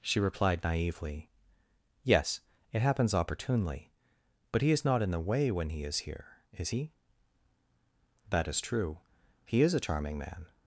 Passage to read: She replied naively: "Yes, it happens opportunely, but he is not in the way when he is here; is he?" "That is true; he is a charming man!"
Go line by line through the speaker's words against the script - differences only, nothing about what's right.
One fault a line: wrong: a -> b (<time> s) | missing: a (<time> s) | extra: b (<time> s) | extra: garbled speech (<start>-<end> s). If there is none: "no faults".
no faults